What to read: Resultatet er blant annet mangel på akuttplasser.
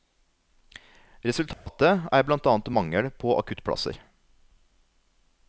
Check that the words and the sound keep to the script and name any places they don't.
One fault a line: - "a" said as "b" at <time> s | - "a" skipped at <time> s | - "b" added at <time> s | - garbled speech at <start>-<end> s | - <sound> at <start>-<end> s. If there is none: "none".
- dropout at 1.5-1.7 s